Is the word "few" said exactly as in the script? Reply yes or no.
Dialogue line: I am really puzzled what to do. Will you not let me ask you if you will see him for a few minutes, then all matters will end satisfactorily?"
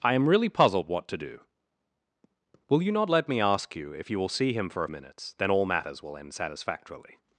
no